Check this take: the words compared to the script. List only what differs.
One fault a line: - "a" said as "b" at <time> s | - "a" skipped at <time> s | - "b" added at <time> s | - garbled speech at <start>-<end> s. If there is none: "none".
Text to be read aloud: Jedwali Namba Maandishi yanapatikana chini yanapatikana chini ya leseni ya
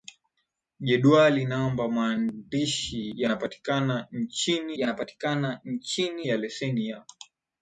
none